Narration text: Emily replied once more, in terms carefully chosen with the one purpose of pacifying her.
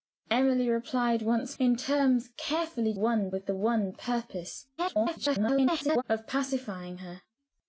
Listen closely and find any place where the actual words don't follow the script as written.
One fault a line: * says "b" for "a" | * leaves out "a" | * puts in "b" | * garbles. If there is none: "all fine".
* leaves out "more"
* says "one" for "chosen"
* garbles